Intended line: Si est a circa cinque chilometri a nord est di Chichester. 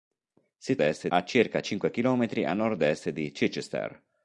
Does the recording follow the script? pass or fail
pass